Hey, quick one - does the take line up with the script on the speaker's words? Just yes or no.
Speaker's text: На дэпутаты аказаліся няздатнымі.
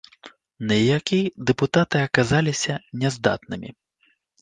no